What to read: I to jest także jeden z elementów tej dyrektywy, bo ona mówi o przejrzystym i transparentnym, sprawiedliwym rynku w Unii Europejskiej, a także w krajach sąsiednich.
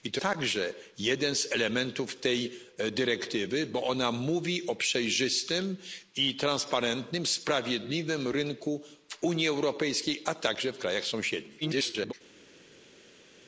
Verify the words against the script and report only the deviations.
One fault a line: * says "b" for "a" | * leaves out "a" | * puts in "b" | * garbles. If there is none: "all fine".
* leaves out "jest"
* garbles